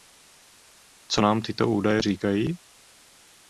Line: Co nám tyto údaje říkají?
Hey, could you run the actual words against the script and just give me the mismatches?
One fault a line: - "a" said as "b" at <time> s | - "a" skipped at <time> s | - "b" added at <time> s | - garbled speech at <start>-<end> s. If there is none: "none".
none